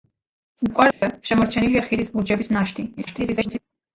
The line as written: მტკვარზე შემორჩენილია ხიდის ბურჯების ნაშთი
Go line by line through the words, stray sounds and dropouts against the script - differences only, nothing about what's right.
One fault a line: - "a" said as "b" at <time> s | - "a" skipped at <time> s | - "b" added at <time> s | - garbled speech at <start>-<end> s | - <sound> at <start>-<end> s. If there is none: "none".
- dropout at 0.9-1.0 s
- garbled speech at 3.0-3.6 s